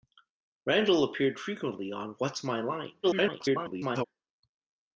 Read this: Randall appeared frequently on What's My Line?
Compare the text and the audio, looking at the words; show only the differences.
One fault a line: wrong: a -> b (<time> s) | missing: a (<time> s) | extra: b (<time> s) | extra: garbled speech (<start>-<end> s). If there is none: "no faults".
extra: garbled speech (3.0-4.1 s)